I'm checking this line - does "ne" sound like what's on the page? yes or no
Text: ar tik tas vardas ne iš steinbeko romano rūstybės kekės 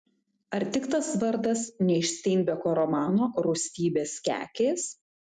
yes